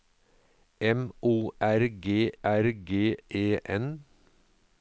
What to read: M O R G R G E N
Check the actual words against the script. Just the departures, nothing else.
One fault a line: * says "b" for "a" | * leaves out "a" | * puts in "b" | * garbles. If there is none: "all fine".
all fine